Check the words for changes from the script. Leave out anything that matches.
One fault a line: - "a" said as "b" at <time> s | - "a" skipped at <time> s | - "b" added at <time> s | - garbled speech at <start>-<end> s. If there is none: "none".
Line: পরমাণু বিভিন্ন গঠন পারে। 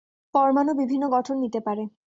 - "নিতে" added at 1.4 s